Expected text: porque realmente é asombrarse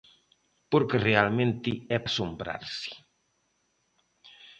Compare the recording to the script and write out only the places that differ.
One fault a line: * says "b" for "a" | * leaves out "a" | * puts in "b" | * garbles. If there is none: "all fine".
all fine